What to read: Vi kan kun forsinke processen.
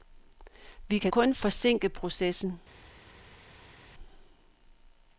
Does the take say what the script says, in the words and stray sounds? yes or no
yes